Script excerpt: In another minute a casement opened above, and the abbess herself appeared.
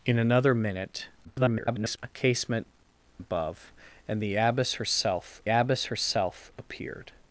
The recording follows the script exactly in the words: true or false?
false